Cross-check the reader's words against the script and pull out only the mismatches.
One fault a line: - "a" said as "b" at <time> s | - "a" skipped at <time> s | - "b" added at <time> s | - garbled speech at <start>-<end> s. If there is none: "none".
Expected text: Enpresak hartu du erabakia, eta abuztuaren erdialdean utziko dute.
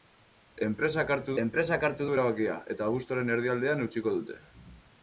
- "enpresak hartu" added at 1.4 s